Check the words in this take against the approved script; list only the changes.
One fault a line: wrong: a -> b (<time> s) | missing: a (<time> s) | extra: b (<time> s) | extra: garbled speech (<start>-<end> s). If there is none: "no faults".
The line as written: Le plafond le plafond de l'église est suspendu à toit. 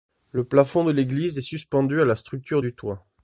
missing: le plafond (0.8 s)
extra: la structure du (2.0 s)